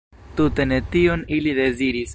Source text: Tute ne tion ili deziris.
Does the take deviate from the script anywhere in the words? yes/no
no